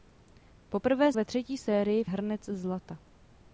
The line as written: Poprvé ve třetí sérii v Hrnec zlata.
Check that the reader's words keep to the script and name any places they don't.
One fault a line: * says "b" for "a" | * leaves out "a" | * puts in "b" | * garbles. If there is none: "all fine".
all fine